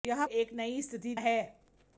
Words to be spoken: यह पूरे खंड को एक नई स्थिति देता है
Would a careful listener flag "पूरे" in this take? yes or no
yes